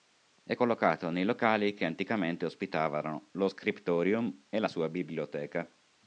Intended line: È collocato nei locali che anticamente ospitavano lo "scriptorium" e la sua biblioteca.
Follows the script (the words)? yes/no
yes